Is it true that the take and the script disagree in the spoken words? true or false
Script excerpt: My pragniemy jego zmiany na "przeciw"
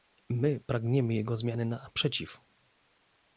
false